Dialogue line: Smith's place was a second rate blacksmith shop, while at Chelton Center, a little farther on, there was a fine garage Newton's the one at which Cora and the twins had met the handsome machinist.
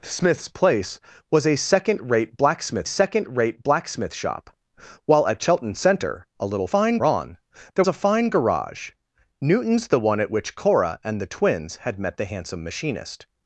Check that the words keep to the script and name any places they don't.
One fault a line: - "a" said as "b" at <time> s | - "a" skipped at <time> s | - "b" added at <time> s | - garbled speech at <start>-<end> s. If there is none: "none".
- "second rate blacksmith" added at 2.8 s
- "farther" said as "fine" at 6.7 s
- "was" skipped at 7.8 s